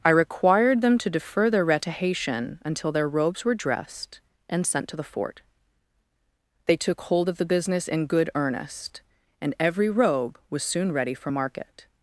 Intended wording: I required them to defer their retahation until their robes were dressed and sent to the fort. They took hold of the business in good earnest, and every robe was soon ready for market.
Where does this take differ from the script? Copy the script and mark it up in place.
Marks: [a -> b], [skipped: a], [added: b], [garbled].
I required them to defer their retahation until their robes were dressed and sent to the fort. They took hold of the business in good earnest, and every robe was soon ready for market.